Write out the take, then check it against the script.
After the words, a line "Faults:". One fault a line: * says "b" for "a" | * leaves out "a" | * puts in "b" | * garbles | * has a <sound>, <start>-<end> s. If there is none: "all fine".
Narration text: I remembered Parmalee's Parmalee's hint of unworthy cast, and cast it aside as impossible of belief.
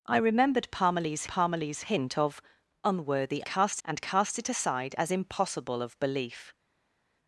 I remembered Parmalee's Parmalee's hint of unworthy cast, and cast it aside as impossible of belief.
Faults:
all fine